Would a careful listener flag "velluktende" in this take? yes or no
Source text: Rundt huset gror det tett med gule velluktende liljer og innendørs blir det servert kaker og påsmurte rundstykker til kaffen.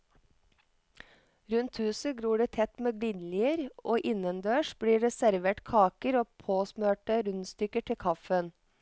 yes